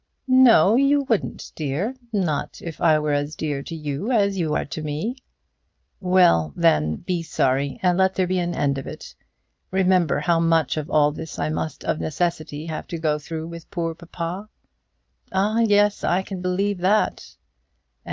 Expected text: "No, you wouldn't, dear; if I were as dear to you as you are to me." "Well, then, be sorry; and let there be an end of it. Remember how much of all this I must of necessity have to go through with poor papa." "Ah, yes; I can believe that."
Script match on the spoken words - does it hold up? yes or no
no